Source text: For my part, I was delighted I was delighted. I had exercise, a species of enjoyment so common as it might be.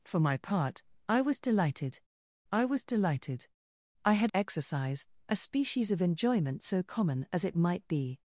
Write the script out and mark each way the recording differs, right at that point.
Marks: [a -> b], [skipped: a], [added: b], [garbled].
For my part, I was delighted I was delighted. I had exercise, a species of enjoyment so common as it might be.